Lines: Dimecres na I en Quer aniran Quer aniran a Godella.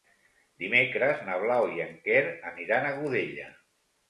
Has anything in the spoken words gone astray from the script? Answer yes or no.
yes